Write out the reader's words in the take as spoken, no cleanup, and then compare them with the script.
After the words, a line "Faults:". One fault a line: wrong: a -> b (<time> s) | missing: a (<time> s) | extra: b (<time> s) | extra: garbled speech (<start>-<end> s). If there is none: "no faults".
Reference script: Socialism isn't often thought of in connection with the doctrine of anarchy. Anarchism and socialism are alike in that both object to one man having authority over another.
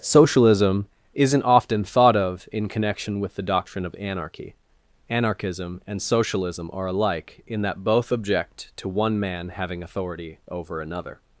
Socialism isn't often thought of in connection with the doctrine of anarchy. Anarchism and socialism are alike in that both object to one man having authority over another.
Faults:
no faults